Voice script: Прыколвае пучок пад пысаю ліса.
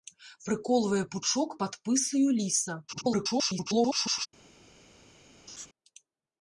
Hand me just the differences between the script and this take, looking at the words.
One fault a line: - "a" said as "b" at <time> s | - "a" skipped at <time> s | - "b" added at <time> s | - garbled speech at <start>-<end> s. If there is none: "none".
- garbled speech at 2.9-4.3 s